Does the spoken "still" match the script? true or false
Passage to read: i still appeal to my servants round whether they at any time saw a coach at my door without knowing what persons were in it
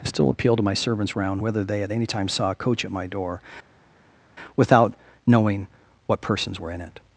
true